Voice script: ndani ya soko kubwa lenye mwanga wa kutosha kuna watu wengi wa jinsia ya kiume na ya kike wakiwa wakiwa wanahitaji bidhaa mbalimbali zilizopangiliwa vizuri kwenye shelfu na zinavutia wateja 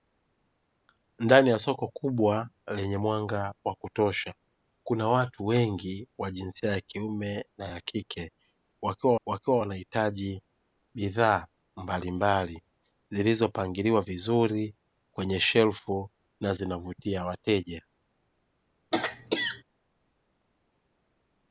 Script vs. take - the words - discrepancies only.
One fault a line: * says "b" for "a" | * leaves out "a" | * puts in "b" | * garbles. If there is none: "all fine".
all fine